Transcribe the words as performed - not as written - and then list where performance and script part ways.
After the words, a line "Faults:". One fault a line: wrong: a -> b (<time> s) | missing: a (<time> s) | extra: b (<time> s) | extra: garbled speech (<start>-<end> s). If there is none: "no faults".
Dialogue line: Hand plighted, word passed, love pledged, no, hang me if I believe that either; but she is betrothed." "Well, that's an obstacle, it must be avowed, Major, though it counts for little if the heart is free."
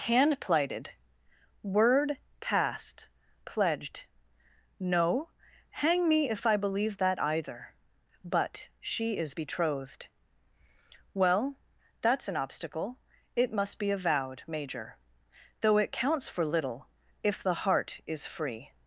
Hand plighted, word passed, pledged, no, hang me if I believe that either; but she is betrothed." "Well, that's an obstacle, it must be avowed, Major, though it counts for little if the heart is free."
Faults:
missing: love (3.1 s)